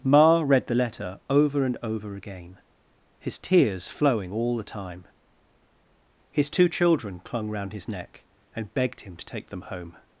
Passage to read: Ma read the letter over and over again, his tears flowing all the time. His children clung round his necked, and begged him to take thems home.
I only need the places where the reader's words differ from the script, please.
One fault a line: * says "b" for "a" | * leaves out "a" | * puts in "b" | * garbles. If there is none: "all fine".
* puts in "two"
* says "neck" for "necked"
* says "them" for "thems"